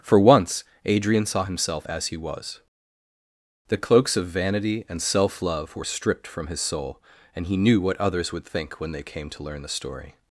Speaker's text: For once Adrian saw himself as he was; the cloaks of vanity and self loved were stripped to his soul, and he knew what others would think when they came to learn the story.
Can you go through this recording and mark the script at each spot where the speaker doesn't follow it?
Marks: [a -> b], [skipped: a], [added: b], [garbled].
For once Adrian saw himself as he was; the cloaks of vanity and self [loved -> love] were stripped [to -> from] his soul, and he knew what others would think when they came to learn the story.